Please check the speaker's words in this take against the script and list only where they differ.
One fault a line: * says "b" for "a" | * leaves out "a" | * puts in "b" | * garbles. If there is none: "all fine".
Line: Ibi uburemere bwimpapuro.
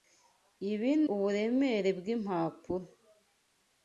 all fine